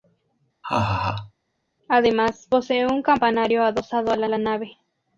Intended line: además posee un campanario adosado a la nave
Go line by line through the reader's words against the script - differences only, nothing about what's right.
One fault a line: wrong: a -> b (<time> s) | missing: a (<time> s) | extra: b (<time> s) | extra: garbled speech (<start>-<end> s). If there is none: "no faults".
extra: la (4.3 s)